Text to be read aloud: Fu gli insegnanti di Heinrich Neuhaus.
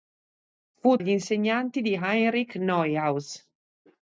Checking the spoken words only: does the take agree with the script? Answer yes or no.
yes